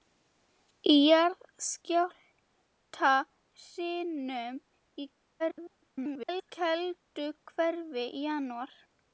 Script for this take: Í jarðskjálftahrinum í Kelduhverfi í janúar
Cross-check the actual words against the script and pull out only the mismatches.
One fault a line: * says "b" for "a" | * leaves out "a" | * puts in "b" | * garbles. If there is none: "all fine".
* garbles